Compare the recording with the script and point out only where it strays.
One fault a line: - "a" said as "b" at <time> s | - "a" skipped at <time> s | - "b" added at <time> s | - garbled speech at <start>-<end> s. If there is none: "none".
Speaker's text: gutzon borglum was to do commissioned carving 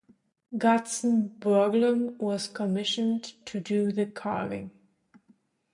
- "commissioned" added at 2.5 s
- "commissioned" said as "the" at 3.9 s